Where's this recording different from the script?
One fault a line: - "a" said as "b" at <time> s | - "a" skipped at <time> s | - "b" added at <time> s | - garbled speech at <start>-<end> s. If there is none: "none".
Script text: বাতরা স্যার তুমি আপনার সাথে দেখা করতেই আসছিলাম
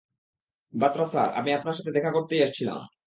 - "তুমি" said as "আমি" at 1.3 s